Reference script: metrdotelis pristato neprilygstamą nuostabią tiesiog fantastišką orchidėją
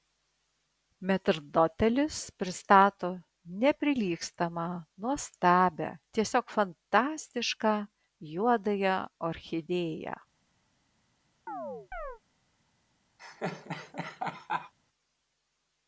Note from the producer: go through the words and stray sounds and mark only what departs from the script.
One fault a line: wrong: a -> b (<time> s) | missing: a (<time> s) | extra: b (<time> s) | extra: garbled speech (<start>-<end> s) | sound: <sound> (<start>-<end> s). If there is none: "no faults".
extra: juodąją (8.3 s)
sound: chirp (11.5-12.2 s)
sound: laugh (13.2-14.7 s)